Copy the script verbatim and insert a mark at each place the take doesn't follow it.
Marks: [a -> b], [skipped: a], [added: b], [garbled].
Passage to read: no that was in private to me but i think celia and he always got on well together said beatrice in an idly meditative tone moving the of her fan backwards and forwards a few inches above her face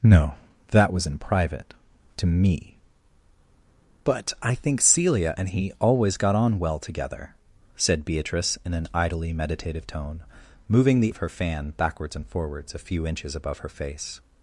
no that was in private to me but i think celia and he always got on well together said beatrice in an idly meditative tone moving the of her fan backwards and forwards a few inches above her face